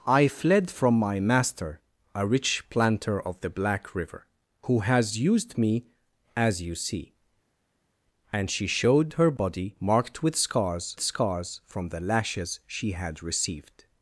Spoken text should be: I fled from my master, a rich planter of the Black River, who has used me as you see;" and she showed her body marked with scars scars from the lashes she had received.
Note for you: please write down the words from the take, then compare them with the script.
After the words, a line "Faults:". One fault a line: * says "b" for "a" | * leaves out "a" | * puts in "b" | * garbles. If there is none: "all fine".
I fled from my master, a rich planter of the Black River, who has used me as you see;" and she showed her body marked with scars scars from the lashes she had received.
Faults:
all fine